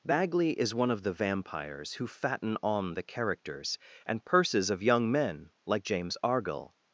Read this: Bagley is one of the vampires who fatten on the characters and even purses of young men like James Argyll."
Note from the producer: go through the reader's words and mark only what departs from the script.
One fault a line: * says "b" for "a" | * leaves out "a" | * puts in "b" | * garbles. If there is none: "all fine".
* leaves out "even"